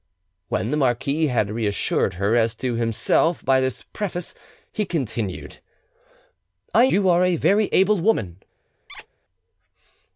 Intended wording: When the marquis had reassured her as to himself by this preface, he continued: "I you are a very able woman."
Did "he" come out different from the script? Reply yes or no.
no